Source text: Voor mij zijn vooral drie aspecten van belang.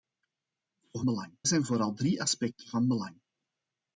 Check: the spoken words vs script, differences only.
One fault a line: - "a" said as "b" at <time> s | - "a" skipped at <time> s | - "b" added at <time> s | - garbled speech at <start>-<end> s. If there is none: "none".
- "mij" said as "belang" at 1.0 s